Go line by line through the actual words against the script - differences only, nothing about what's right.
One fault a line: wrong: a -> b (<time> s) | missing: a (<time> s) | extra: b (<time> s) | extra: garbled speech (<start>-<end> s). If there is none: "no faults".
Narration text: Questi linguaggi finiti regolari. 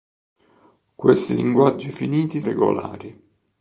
no faults